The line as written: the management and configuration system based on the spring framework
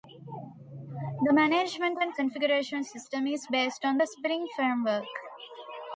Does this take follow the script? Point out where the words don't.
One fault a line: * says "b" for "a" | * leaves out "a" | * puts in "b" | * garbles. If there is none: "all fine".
* puts in "is"